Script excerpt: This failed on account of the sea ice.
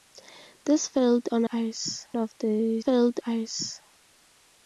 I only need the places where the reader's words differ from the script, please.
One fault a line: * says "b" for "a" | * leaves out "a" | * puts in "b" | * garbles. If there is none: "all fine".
* says "ice" for "account"
* says "failed" for "sea"